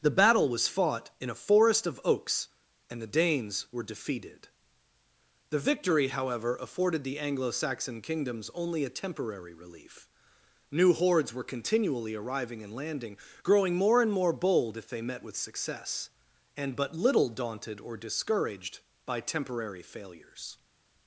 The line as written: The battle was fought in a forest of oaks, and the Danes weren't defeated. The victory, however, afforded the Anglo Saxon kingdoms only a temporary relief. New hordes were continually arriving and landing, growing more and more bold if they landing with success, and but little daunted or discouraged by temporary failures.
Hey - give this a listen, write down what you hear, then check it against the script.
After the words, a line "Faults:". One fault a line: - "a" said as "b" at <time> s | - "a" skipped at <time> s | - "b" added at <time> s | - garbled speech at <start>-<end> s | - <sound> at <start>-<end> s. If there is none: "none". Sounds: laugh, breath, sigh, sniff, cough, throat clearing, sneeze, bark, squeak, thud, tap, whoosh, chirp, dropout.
The battle was fought in a forest of oaks, and the Danes were defeated. The victory, however, afforded the Anglo Saxon kingdoms only a temporary relief. New hordes were continually arriving and landing, growing more and more bold if they met with success, and but little daunted or discouraged by temporary failures.
Faults:
- "weren't" said as "were" at 3.7 s
- "landing" said as "met" at 15.0 s